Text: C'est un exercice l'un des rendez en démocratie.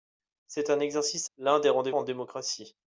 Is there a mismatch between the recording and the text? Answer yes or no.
no